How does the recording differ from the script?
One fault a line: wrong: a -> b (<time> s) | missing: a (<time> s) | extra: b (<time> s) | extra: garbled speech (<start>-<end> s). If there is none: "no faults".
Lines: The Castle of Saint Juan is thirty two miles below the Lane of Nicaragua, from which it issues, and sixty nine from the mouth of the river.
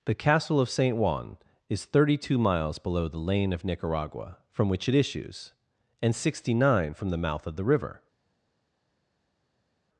no faults